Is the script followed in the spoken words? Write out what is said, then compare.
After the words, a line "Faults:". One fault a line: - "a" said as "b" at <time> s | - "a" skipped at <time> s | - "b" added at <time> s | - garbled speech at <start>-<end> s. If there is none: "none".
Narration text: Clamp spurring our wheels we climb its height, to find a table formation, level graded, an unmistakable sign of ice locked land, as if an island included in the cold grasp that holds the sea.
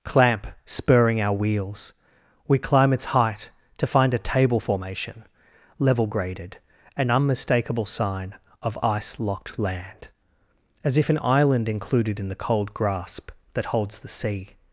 Clamp spurring our wheels we climb its height, to find a table formation, level graded, an unmistakable sign of ice locked land, as if an island included in the cold grasp that holds the sea.
Faults:
none